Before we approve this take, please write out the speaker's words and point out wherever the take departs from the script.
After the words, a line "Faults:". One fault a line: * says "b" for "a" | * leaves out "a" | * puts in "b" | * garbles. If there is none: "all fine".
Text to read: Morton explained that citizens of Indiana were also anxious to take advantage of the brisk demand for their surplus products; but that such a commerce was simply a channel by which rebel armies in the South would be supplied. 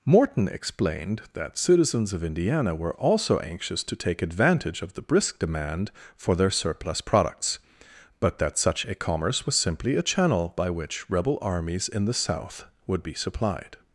Morton explained that citizens of Indiana were also anxious to take advantage of the brisk demand for their surplus products; but that such a commerce was simply a channel by which rebel armies in the South would be supplied.
Faults:
all fine